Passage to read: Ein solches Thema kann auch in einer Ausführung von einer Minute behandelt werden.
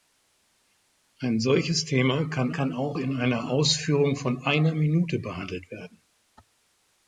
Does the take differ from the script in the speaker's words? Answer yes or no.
yes